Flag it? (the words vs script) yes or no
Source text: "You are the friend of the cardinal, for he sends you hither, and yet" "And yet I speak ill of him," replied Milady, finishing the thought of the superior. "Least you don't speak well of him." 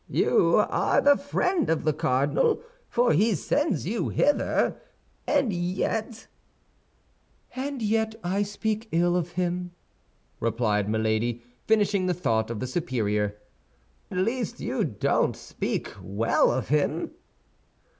no